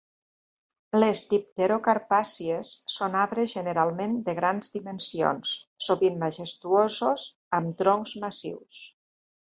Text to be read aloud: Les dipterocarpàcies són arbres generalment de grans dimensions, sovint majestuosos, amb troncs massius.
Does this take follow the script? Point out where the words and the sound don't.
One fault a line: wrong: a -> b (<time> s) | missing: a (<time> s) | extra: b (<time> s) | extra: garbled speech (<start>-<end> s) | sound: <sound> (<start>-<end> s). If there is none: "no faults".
no faults